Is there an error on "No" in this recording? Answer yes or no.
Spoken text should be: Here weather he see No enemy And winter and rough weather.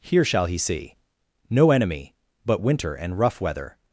no